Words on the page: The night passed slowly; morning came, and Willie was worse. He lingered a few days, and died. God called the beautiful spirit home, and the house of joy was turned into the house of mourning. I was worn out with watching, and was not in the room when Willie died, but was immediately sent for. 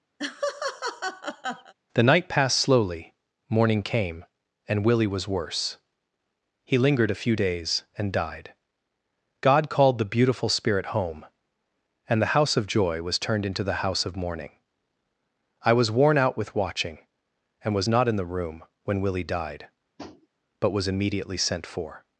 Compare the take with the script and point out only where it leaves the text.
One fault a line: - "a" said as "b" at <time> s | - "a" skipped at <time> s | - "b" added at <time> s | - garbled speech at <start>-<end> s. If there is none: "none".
none